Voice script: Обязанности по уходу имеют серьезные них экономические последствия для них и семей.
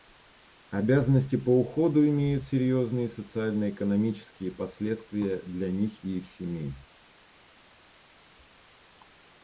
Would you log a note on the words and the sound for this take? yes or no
yes